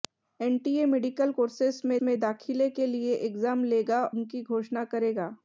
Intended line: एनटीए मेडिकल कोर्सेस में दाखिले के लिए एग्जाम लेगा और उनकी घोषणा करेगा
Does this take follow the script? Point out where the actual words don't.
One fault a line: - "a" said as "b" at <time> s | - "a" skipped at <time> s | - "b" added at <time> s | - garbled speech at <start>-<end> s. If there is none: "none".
- "में" added at 2.0 s
- "और" skipped at 4.0 s